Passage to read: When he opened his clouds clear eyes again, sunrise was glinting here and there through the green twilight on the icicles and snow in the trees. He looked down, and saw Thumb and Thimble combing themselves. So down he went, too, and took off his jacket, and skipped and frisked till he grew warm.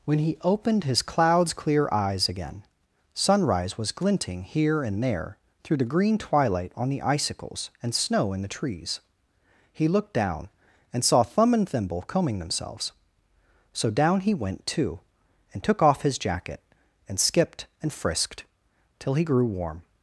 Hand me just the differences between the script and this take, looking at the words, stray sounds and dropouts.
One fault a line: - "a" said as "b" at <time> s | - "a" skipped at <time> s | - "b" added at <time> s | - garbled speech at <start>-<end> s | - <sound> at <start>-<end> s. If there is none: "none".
none